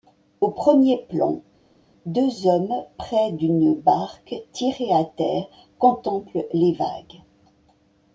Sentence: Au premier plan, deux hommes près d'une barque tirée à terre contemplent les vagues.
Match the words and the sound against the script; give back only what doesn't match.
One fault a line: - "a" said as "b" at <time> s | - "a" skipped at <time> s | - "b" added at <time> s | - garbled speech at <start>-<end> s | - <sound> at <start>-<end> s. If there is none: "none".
none